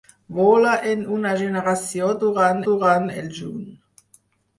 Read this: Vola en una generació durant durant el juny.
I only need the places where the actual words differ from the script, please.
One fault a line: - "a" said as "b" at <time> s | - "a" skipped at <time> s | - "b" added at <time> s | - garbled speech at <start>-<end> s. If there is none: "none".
none